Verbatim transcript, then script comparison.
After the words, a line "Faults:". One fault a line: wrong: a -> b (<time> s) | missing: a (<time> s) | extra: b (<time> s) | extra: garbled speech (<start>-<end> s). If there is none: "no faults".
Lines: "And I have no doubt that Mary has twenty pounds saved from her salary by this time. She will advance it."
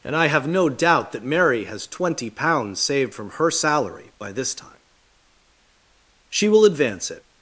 "And I have no doubt that Mary has twenty pounds saved from her salary by this time. She will advance it."
Faults:
no faults